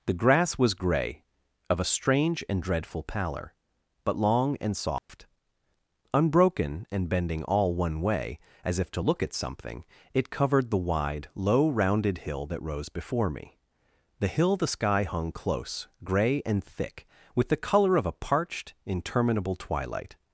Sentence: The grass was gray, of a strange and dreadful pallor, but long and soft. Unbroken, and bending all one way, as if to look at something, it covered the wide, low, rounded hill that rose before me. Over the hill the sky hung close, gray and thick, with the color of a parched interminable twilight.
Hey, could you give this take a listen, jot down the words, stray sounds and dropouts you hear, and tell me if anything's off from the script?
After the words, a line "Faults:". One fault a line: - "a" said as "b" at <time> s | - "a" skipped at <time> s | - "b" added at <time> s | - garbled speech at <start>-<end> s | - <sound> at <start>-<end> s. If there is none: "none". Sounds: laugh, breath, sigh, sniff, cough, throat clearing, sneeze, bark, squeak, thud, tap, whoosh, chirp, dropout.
The grass was gray, of a strange and dreadful pallor, but long and soft. Unbroken, and bending all one way, as if to look at something, it covered the wide, low, rounded hill that rose before me. the hill the sky hung close, gray and thick, with the color of a parched interminable twilight.
Faults:
- dropout at 5.0-5.1 s
- "Over" skipped at 13.6 s